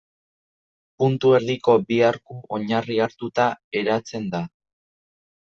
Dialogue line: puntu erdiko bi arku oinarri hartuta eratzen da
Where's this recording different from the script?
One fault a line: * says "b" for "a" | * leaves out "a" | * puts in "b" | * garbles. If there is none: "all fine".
all fine